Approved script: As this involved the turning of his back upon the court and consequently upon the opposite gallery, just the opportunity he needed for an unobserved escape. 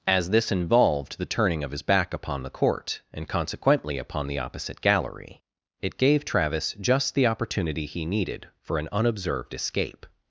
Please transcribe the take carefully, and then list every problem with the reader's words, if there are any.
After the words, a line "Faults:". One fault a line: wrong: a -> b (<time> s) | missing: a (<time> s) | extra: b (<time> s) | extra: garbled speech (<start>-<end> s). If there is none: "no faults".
As this involved the turning of his back upon the court and consequently upon the opposite gallery, it gave Travis just the opportunity he needed for an unobserved escape.
Faults:
extra: it gave Travis (5.8 s)